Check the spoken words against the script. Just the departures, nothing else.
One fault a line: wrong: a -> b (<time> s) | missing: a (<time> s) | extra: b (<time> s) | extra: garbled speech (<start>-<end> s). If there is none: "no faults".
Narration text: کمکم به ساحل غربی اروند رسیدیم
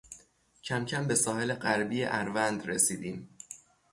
no faults